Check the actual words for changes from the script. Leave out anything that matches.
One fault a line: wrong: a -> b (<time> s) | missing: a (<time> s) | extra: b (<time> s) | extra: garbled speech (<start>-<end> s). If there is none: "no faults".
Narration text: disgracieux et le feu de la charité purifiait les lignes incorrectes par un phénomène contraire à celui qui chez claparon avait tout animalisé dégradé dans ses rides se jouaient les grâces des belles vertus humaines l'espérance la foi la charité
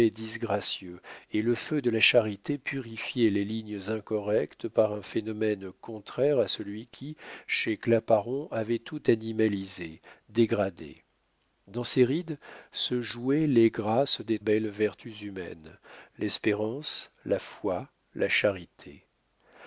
no faults